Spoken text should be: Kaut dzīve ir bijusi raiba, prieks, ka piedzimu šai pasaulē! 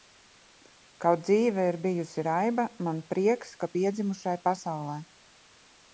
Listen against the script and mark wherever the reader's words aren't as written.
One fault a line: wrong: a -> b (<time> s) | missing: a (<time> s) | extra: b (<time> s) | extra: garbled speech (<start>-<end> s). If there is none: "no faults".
extra: man (2.9 s)